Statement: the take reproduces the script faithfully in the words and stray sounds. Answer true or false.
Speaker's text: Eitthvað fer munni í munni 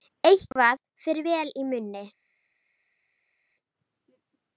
false